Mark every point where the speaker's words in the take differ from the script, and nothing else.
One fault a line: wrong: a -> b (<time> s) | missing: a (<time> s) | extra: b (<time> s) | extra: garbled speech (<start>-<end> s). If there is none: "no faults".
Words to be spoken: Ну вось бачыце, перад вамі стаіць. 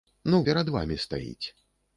missing: вось бачыце (0.4 s)